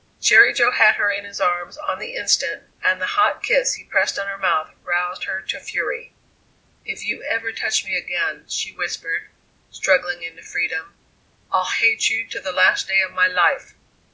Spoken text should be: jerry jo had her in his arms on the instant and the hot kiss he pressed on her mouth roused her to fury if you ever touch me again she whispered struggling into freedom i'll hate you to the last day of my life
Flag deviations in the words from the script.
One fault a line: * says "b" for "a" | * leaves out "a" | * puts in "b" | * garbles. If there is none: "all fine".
all fine